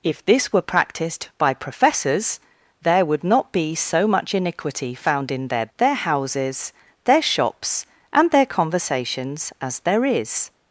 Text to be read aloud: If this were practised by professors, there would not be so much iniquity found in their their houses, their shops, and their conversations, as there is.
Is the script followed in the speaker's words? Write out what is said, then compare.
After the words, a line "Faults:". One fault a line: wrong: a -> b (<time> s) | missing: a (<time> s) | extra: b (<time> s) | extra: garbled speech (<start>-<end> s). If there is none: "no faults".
If this were practised by professors, there would not be so much iniquity found in their their houses, their shops, and their conversations, as there is.
Faults:
no faults